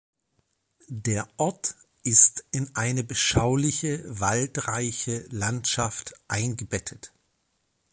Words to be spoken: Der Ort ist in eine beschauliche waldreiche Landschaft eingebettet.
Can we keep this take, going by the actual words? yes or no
yes